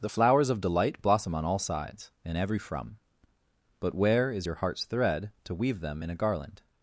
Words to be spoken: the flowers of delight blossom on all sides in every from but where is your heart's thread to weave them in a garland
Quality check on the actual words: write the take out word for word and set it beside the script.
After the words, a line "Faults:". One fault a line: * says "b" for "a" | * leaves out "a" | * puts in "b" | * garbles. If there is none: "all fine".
the flowers of delight blossom on all sides in every from but where is your heart's thread to weave them in a garland
Faults:
all fine